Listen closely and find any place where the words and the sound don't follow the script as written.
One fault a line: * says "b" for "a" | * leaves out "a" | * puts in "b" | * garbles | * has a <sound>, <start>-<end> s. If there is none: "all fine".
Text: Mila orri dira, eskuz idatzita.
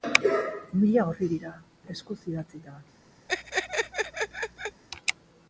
* has a laugh, 3.3-4.8 s